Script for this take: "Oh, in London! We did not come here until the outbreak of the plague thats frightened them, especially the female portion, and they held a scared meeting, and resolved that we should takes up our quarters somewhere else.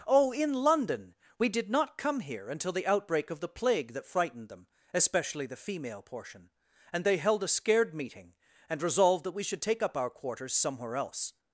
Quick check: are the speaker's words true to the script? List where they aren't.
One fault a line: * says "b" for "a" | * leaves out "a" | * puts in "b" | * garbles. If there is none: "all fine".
* says "that" for "thats"
* says "take" for "takes"